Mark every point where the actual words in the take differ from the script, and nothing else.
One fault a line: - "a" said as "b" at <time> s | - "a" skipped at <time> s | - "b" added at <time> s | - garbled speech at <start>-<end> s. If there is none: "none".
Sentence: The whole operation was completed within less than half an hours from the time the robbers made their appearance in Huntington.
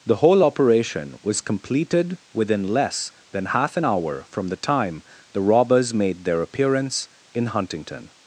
- "hours" said as "hour" at 3.8 s